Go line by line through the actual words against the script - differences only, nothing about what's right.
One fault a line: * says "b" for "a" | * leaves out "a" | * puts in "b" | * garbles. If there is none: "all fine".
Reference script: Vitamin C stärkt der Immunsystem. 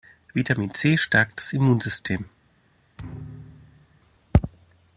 * says "das" for "der"